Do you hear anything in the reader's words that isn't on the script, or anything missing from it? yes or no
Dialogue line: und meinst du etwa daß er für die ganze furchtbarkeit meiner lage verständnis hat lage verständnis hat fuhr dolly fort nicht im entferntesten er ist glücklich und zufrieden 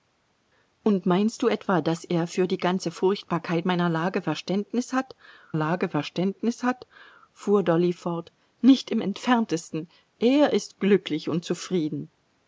no